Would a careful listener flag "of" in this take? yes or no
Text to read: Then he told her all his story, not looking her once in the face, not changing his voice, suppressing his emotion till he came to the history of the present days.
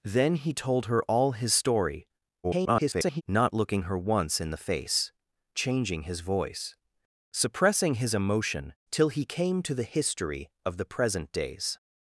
no